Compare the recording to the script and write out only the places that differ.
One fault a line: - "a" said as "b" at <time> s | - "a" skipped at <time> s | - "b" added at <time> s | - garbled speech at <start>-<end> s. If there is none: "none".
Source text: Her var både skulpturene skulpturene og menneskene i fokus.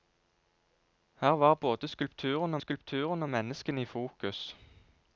none